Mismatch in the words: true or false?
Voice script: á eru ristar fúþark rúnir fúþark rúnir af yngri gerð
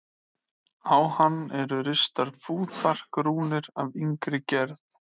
true